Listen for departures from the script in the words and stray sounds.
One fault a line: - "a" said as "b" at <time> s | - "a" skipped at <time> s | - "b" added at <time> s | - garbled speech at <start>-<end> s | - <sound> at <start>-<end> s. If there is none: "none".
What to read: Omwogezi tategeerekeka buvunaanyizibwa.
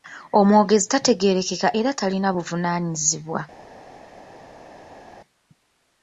- "era talina" added at 1.8 s